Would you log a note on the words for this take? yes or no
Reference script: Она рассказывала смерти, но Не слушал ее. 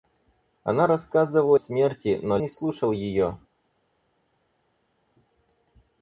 no